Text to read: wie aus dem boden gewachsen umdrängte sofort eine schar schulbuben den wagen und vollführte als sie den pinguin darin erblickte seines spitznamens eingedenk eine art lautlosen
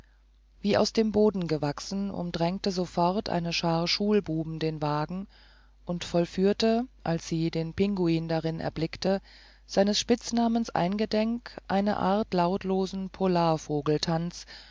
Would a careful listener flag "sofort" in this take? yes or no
no